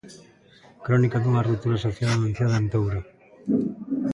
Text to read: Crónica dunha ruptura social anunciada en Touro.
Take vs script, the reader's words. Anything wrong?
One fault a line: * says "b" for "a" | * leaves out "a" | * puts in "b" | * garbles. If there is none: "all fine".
all fine